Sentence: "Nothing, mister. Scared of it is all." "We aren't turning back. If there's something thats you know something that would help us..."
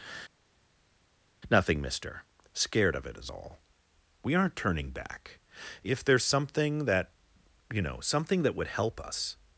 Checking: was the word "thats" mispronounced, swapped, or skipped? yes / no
yes